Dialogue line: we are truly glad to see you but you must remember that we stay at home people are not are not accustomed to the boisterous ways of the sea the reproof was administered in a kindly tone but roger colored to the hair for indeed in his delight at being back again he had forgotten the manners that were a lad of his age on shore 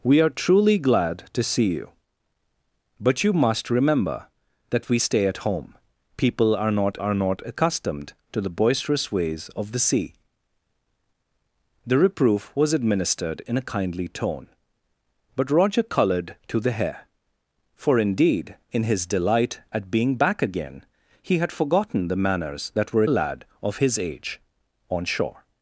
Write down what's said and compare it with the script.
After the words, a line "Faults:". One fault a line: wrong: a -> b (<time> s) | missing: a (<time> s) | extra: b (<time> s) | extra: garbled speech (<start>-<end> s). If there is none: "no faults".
we are truly glad to see you but you must remember that we stay at home people are not are not accustomed to the boisterous ways of the sea the reproof was administered in a kindly tone but roger colored to the hair for indeed in his delight at being back again he had forgotten the manners that were a lad of his age on shore
Faults:
no faults